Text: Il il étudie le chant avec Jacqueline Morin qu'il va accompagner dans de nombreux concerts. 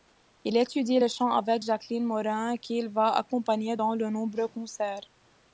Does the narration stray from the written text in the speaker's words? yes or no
yes